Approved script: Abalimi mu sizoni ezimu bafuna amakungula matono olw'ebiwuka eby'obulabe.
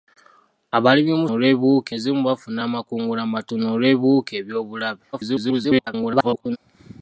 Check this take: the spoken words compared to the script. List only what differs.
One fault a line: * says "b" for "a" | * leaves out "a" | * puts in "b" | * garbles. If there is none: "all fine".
* says "olw'ebiwuka" for "sizoni"
* garbles